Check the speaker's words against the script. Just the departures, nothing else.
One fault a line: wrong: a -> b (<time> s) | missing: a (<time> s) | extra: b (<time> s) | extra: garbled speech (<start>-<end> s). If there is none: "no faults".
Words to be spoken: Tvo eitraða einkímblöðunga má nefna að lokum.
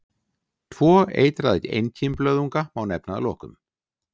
no faults